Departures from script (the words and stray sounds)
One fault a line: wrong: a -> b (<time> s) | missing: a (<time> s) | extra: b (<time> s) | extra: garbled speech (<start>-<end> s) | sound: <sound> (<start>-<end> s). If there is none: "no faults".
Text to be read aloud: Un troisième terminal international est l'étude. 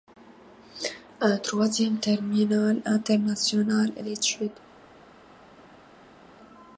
no faults